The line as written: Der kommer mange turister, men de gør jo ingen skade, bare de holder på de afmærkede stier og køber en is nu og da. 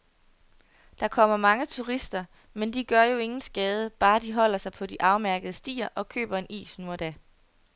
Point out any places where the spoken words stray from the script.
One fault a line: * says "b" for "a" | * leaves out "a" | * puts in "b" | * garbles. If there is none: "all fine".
* puts in "sig"